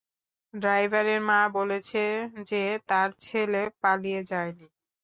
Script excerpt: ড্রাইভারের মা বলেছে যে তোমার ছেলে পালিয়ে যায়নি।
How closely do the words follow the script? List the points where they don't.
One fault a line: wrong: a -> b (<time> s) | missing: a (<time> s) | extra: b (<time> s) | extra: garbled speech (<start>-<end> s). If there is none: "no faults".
wrong: তোমার -> তার (2.9 s)